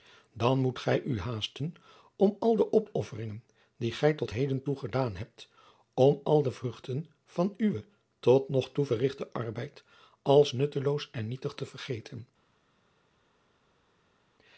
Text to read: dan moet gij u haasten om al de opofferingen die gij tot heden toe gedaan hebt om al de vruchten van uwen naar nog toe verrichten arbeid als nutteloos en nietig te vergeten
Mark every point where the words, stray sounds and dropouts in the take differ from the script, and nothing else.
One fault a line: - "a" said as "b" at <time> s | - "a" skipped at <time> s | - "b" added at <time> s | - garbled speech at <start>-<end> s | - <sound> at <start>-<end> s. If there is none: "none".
- "naar" said as "tot" at 8.2 s